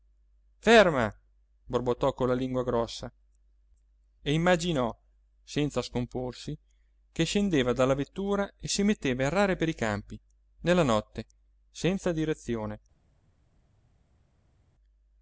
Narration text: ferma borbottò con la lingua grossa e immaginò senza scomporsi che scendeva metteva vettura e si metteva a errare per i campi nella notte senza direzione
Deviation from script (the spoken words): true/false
true